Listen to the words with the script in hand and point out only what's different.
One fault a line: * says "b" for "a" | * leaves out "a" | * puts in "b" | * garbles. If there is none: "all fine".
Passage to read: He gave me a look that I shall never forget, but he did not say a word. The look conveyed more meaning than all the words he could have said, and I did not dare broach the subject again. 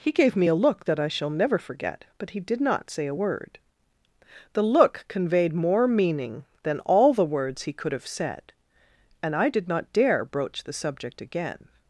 all fine